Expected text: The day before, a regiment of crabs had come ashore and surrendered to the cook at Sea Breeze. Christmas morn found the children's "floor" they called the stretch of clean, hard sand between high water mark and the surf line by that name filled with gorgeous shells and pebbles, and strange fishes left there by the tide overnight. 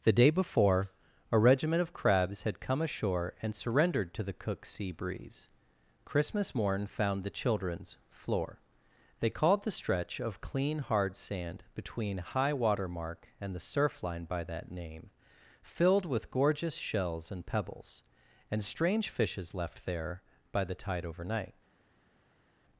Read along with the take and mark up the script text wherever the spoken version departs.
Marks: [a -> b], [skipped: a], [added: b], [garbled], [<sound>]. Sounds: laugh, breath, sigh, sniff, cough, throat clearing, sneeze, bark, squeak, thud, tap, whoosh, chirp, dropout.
The day before, a regiment of crabs had come ashore and surrendered to the cook [skipped: at] Sea Breeze. Christmas morn found the children's "floor" they called the stretch of clean, hard sand between high water mark and the surf line by that name filled with gorgeous shells and pebbles, and strange fishes left there by the tide overnight.